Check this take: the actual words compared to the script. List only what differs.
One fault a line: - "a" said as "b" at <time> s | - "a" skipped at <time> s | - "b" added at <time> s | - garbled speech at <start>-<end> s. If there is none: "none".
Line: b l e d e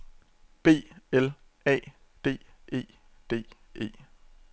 - "a d" added at 1.7 s